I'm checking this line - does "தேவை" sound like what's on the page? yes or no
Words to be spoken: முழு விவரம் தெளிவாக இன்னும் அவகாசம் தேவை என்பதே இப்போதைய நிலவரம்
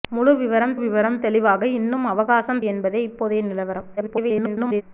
no